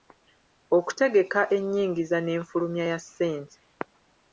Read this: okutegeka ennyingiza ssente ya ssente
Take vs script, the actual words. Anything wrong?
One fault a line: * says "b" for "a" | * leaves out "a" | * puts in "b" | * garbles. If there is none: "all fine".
* says "n'enfulumya" for "ssente"